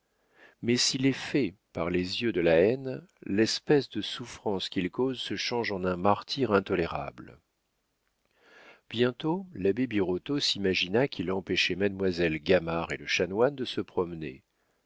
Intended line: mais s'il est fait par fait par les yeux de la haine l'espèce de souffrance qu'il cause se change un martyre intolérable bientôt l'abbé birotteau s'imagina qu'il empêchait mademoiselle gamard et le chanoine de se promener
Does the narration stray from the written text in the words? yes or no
yes